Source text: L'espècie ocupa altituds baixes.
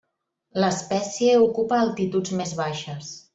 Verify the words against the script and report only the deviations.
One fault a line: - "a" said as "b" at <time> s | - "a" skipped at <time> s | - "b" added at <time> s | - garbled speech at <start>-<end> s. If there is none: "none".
- "més" added at 2.4 s